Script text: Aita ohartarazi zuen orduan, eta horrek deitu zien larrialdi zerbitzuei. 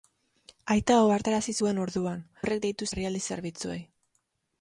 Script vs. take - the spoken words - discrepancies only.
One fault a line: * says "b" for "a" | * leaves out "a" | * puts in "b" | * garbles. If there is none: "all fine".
* leaves out "eta"
* leaves out "zien"